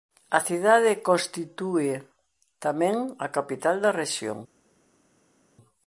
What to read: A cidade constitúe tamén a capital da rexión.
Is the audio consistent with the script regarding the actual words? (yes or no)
yes